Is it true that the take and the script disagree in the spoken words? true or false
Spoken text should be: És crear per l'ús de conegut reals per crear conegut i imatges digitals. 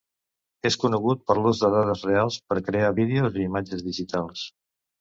true